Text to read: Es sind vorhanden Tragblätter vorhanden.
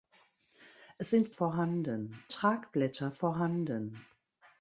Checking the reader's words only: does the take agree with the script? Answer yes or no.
yes